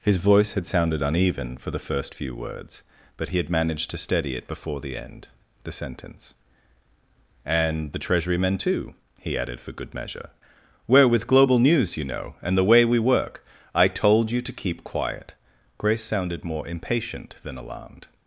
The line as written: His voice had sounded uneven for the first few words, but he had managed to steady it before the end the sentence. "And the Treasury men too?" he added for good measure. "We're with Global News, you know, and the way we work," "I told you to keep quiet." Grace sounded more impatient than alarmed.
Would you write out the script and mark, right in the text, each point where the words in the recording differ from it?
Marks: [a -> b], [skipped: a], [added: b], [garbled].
His voice had sounded uneven for the first few words, but he had managed to steady it before the end the sentence. "And the Treasury men too?" he added for good measure. "We're with Global News, you know, and the way we work," "I told you to keep quiet." Grace sounded more impatient than alarmed.